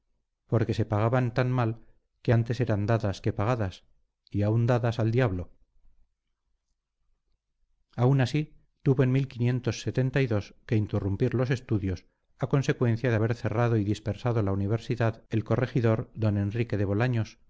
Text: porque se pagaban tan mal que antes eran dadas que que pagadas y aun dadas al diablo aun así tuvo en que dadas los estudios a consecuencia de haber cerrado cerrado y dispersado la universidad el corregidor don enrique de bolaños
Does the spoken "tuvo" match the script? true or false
true